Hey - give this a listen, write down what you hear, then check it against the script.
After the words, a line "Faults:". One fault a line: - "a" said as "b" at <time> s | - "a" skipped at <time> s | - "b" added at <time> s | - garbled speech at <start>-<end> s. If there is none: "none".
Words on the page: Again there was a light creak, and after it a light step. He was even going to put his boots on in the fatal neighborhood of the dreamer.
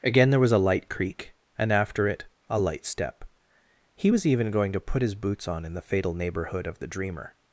Again there was a light creak, and after it a light step. He was even going to put his boots on in the fatal neighborhood of the dreamer.
Faults:
none